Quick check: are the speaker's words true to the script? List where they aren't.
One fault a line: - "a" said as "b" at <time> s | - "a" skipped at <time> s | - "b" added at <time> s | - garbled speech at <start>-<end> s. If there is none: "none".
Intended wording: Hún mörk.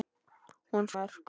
none